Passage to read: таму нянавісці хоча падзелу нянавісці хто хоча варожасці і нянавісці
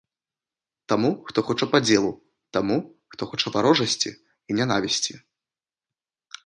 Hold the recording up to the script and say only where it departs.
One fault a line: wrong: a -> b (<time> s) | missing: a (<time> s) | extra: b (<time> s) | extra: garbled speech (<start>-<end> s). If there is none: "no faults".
wrong: нянавісці -> хто (1.3 s)
wrong: нянавісці -> таму (2.6 s)